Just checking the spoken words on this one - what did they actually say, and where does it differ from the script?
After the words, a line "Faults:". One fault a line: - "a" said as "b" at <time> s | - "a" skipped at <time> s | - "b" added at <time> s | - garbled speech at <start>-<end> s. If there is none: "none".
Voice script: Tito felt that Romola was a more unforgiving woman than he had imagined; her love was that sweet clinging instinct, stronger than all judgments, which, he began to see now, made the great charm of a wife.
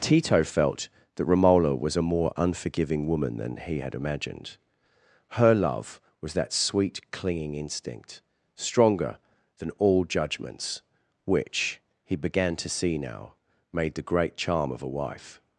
Tito felt that Romola was a more unforgiving woman than he had imagined; her love was that sweet clinging instinct, stronger than all judgments, which, he began to see now, made the great charm of a wife.
Faults:
none